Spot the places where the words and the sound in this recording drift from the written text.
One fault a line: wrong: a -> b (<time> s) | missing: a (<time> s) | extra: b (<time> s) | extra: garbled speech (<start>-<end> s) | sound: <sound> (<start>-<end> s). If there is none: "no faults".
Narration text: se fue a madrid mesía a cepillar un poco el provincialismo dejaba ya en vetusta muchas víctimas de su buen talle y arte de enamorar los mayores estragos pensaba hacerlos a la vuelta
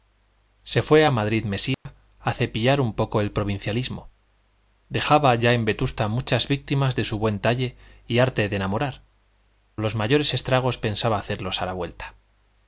sound: dropout (1.7-1.9 s)